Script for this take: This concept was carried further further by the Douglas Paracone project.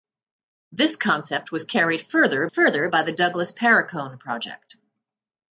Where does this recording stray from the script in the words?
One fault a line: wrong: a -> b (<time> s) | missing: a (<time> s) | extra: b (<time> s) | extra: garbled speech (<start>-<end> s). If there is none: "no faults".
no faults